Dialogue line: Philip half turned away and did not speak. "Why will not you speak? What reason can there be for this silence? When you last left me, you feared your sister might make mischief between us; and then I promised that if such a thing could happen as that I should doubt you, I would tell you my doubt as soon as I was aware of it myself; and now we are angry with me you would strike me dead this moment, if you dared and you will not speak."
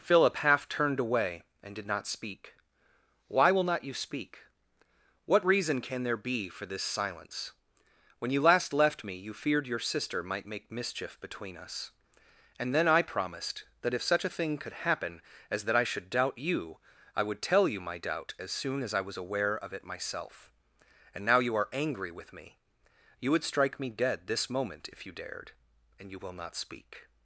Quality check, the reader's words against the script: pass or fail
fail